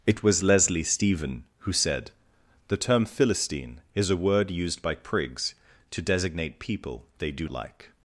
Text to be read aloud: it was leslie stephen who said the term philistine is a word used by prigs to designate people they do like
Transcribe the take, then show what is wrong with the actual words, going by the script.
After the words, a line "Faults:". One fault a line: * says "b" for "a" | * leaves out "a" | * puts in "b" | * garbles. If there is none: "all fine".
it was leslie stephen who said the term philistine is a word used by prigs to designate people they do like
Faults:
all fine